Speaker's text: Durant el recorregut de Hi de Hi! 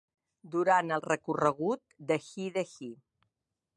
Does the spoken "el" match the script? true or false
true